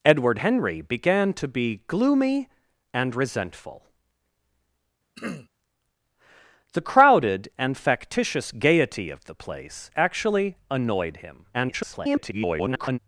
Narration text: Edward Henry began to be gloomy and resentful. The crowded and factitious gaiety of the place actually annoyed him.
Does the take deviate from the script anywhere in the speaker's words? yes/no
yes